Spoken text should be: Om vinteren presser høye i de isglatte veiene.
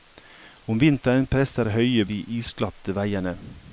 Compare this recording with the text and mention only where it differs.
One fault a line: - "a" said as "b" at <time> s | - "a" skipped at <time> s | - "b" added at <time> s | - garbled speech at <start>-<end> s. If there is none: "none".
none